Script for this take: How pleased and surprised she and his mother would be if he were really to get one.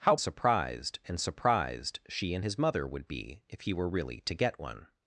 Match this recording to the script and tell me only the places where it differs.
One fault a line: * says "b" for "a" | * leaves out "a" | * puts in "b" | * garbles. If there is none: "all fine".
* says "surprised" for "pleased"